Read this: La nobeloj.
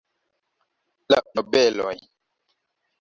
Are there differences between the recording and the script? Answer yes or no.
no